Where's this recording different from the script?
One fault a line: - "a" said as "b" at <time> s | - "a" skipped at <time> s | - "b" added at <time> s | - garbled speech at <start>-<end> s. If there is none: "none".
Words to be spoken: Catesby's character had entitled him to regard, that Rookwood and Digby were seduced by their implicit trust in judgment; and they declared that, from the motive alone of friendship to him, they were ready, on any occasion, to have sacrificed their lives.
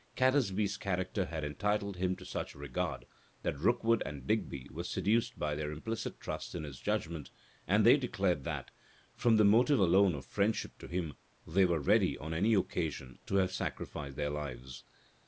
- "such" added at 2.2 s
- "his" added at 6.6 s